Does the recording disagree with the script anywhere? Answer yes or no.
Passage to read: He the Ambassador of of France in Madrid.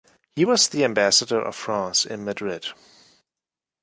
yes